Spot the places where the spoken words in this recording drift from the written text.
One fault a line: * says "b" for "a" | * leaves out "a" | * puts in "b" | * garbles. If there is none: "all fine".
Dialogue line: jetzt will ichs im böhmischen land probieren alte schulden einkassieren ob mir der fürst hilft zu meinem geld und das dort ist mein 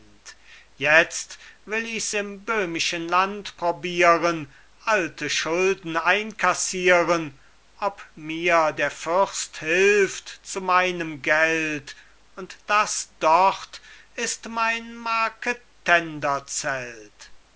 all fine